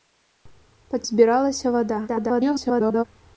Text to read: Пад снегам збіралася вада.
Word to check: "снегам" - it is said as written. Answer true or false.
false